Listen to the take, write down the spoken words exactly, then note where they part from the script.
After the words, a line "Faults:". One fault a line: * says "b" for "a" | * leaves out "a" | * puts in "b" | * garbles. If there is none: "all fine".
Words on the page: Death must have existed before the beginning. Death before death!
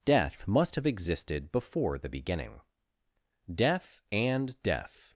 Death must have existed before the beginning. Death and death!
Faults:
* says "and" for "before"